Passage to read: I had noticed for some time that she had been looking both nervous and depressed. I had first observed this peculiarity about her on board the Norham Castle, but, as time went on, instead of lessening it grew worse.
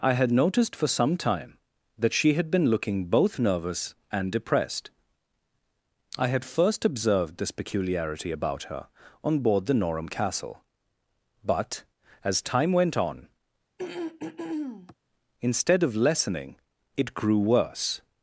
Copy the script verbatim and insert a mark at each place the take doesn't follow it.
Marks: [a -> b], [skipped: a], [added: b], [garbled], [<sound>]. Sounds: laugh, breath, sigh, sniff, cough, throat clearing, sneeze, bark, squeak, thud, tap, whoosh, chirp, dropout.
I had noticed for some time that she had been looking both nervous and depressed. I had first observed this peculiarity about her on board the Norham Castle, but, as time went on, [throat clearing] instead of lessening it grew worse.